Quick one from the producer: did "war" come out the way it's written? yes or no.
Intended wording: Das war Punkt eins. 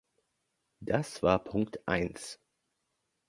yes